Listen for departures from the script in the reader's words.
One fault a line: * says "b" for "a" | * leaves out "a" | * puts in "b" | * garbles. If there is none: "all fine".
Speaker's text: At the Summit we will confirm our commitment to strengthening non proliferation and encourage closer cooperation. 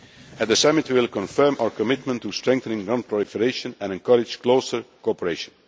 all fine